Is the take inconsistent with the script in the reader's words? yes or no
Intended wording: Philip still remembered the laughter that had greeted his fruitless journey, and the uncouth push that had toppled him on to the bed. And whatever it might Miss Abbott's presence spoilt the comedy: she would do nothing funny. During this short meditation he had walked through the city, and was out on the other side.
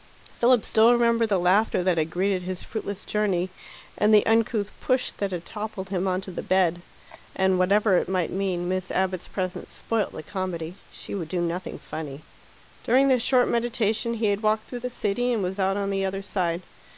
yes